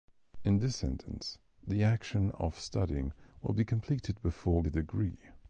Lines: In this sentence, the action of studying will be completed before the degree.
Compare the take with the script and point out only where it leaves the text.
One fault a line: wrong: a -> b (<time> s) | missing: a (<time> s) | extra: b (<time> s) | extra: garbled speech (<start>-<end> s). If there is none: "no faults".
no faults